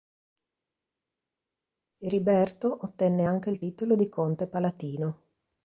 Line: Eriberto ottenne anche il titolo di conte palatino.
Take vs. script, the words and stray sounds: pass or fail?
pass